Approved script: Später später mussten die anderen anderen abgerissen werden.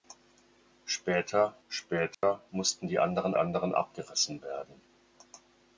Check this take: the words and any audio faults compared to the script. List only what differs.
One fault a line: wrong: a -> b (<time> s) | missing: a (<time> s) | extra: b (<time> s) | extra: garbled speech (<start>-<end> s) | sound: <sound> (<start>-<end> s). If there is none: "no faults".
sound: dropout (2.1-2.2 s)